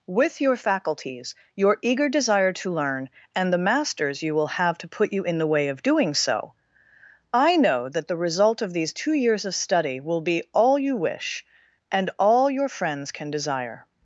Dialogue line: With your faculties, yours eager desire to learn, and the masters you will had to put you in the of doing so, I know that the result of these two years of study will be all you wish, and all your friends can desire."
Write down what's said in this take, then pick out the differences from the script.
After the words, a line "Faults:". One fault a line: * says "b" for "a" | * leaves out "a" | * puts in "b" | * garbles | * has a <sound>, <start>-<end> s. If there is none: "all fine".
With your faculties, your eager desire to learn, and the masters you will have to put you in the way of doing so, I know that the result of these two years of study will be all you wish, and all your friends can desire."
Faults:
* says "your" for "yours"
* says "have" for "had"
* puts in "way"